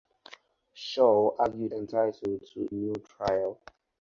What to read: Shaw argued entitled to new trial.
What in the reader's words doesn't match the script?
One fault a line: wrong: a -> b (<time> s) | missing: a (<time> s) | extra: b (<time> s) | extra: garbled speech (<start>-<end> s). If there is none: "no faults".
no faults